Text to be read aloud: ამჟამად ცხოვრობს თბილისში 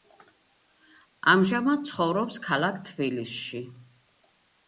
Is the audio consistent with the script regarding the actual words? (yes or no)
no